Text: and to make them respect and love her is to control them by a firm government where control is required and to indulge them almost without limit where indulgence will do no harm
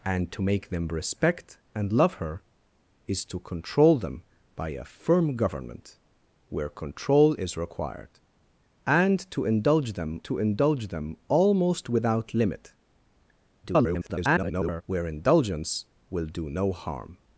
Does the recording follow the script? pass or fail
fail